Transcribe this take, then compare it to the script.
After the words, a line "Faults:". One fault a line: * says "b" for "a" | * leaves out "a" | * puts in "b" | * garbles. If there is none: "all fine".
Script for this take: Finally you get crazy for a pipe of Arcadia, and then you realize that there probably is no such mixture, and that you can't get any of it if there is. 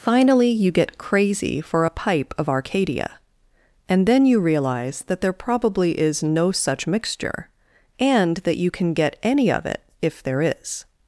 Finally you get crazy for a pipe of Arcadia, and then you realize that there probably is no such mixture, and that you can get any of it if there is.
Faults:
* says "can" for "can't"